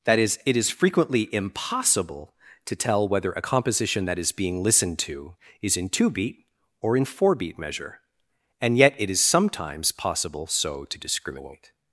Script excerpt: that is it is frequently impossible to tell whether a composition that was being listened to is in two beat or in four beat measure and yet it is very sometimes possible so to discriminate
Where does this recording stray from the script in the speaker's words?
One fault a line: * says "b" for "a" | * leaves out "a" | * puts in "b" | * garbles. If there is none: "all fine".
* says "is" for "was"
* leaves out "very"